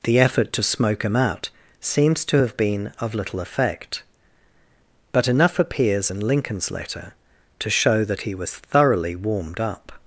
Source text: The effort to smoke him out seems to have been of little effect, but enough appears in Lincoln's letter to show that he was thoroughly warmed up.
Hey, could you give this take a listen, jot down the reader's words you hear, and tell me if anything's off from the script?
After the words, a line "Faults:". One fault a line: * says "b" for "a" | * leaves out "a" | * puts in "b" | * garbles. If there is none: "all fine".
The effort to smoke him out seems to have been of little effect, but enough appears in Lincoln's letter to show that he was thoroughly warmed up.
Faults:
all fine